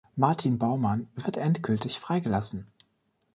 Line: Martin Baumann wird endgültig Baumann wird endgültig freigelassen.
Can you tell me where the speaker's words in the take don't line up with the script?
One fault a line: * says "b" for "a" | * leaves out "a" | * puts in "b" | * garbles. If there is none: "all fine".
* leaves out "Baumann wird endgültig"